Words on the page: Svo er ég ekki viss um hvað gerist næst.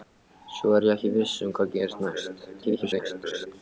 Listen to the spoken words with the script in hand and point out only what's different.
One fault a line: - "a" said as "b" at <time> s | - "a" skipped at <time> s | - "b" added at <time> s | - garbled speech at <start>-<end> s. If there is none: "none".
- garbled speech at 2.5-3.5 s